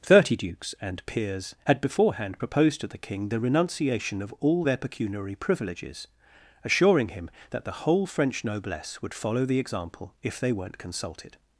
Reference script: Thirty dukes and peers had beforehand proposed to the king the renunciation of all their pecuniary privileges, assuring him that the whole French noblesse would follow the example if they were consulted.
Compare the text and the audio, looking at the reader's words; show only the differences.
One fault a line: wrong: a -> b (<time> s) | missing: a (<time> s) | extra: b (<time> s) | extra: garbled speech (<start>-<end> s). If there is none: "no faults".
wrong: were -> weren't (10.5 s)